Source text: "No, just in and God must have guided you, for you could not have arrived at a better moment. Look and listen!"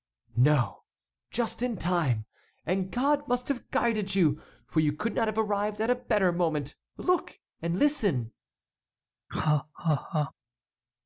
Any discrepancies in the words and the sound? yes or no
yes